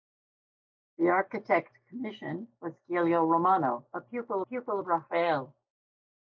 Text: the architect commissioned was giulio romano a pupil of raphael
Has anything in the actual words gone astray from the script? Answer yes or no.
yes